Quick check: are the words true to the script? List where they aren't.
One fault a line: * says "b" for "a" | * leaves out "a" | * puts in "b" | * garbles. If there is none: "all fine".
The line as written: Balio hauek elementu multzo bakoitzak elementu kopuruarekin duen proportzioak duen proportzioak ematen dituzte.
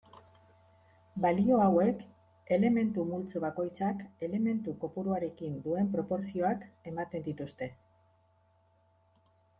* leaves out "duen proportzioak"